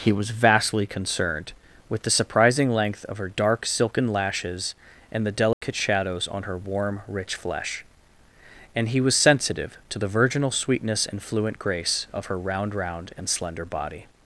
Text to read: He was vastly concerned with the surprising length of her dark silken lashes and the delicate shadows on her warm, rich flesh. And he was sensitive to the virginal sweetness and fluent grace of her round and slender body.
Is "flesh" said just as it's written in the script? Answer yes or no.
yes